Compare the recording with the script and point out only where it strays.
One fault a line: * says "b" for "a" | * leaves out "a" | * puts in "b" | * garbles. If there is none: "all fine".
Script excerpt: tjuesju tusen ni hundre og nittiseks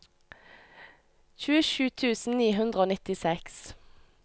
all fine